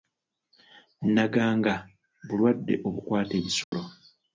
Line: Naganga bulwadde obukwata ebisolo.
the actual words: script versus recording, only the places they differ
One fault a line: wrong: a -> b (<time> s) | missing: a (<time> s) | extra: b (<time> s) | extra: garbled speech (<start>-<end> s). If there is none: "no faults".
no faults